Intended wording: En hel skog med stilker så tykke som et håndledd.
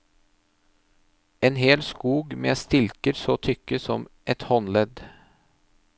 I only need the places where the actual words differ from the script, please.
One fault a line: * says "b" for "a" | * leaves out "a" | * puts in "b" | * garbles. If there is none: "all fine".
all fine